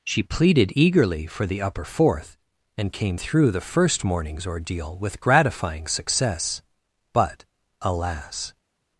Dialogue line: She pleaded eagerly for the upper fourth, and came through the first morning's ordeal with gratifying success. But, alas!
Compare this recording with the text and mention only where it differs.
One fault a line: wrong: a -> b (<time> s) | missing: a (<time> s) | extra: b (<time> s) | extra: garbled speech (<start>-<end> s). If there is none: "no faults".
no faults